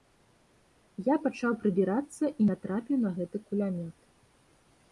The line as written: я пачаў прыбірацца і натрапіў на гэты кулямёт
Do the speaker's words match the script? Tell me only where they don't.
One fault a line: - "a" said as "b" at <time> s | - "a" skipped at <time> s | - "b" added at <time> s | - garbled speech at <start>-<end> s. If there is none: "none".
none